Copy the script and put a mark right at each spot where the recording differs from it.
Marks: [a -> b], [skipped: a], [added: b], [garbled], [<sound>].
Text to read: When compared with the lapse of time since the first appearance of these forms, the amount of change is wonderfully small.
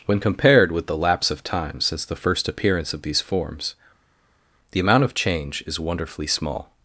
When compared with the lapse of time since the first appearance of these forms, the amount of change is wonderfully small.